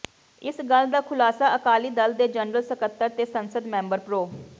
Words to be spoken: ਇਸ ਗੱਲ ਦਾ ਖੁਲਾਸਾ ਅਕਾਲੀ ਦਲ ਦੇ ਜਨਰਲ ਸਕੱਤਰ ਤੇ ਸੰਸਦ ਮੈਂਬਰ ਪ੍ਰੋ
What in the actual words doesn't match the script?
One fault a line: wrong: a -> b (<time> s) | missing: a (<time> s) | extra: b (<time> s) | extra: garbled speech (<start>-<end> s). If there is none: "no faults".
no faults